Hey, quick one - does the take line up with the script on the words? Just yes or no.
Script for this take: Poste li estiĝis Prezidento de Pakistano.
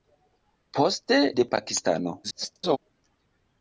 no